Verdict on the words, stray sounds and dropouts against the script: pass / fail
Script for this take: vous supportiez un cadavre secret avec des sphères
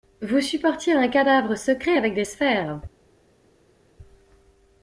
pass